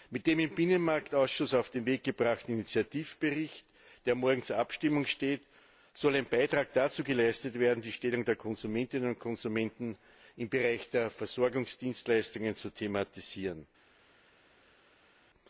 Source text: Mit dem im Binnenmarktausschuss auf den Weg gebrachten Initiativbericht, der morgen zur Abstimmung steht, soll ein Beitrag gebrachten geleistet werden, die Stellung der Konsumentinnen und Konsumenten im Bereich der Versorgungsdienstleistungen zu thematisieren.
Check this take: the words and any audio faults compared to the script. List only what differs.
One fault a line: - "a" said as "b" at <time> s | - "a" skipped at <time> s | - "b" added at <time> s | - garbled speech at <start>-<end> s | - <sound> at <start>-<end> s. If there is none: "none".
- "gebrachten" said as "dazu" at 6.7 s